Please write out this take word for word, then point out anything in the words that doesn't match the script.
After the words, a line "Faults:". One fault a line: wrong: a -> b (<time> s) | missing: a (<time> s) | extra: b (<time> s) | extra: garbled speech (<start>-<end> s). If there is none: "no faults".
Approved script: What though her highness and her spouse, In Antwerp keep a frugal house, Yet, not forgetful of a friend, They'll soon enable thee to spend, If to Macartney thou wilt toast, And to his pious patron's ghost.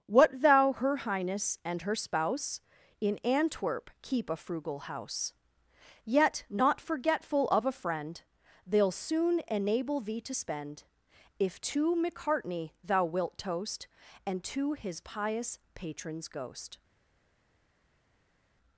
What thou her highness and her spouse, In Antwerp keep a frugal house, Yet, not forgetful of a friend, They'll soon enable thee to spend, If to Macartney thou wilt toast, And to his pious patron's ghost.
Faults:
wrong: though -> thou (0.4 s)